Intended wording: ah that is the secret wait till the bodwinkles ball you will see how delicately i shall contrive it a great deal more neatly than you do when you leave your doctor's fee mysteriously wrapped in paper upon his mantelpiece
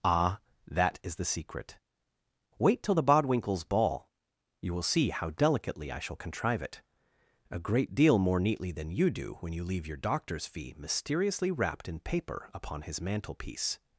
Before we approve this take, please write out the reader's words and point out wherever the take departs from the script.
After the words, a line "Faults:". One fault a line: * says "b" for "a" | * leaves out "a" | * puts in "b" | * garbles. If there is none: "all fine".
ah that is the secret wait till the bodwinkles ball you will see how delicately i shall contrive it a great deal more neatly than you do when you leave your doctor's fee mysteriously wrapped in paper upon his mantelpiece
Faults:
all fine